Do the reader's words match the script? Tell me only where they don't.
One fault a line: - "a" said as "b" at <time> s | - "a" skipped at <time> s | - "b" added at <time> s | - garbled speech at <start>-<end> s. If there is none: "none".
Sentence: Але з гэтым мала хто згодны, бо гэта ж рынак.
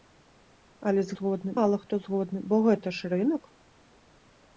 - "гэтым" said as "згодны" at 1.2 s